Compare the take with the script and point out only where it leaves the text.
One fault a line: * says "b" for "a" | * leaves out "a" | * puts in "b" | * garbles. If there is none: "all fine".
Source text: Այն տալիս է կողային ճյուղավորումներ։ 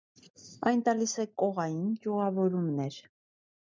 all fine